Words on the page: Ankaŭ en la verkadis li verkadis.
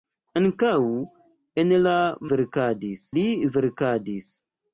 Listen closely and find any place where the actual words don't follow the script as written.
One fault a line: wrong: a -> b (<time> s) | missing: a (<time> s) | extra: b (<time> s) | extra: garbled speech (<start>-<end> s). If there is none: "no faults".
no faults